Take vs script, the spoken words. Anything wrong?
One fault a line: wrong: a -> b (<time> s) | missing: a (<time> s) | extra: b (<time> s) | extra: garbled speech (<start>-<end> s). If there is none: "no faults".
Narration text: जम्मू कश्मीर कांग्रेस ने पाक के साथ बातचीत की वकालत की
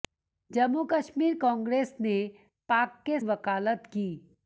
missing: साथ बातचीत की (3.2 s)